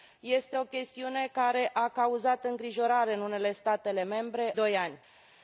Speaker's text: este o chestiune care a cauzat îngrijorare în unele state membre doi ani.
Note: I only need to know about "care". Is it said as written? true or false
true